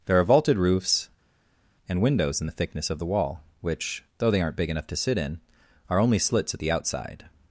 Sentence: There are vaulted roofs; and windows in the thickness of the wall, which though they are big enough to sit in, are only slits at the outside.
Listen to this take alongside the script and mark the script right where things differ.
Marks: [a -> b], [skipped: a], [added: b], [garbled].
There are vaulted roofs; and windows in the thickness of the wall, which though they [are -> aren't] big enough to sit in, are only slits at the outside.